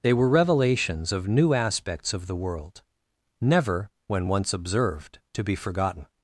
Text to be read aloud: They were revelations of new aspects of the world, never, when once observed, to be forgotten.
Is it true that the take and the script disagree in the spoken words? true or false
false